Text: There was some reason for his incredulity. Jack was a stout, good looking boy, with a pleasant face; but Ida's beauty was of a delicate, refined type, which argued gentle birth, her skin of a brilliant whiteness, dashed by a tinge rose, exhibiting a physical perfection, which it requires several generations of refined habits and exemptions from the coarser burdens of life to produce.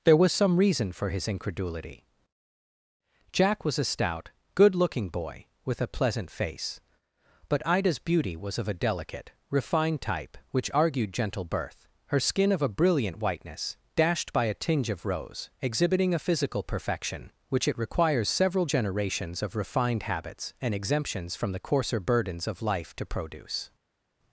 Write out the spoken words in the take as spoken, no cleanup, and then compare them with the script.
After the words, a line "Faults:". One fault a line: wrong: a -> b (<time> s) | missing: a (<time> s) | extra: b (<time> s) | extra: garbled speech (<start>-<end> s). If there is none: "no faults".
There was some reason for his incredulity. Jack was a stout, good looking boy, with a pleasant face; but Ida's beauty was of a delicate, refined type, which argued gentle birth, her skin of a brilliant whiteness, dashed by a tinge of rose, exhibiting a physical perfection, which it requires several generations of refined habits and exemptions from the coarser burdens of life to produce.
Faults:
extra: of (14.9 s)